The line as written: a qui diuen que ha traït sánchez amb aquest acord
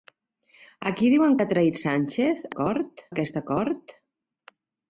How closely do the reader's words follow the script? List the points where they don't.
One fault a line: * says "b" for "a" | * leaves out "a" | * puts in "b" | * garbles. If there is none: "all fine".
* says "acord" for "amb"